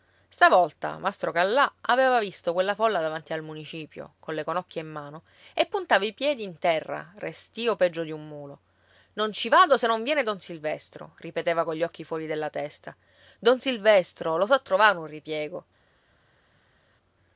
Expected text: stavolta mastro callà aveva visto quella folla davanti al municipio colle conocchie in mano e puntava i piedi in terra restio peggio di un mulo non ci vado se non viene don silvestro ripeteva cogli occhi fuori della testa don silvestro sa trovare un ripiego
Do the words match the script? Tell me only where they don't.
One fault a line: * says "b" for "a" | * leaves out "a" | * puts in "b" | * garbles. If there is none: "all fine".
* puts in "lo"